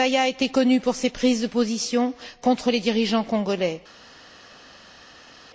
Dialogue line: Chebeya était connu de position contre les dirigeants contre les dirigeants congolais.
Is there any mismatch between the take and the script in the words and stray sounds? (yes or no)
yes